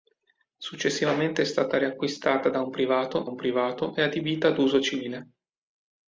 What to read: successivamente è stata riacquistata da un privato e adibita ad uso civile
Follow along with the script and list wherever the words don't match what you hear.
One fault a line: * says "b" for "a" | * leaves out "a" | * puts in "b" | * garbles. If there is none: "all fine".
* puts in "un privato"